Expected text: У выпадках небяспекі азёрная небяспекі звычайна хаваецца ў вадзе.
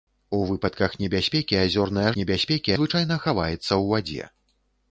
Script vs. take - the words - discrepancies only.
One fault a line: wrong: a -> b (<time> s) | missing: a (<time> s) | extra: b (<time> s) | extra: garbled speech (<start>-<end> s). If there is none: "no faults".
no faults